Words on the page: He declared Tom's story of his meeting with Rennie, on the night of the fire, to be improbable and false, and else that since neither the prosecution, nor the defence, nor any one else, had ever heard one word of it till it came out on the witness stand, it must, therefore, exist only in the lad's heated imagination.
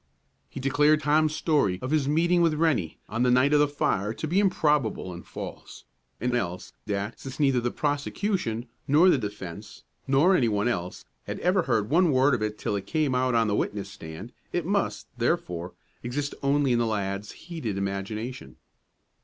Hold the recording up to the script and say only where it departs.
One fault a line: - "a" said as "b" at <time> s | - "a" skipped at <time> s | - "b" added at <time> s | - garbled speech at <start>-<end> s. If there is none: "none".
none